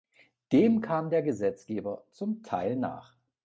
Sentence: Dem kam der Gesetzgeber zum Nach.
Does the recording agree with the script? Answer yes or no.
no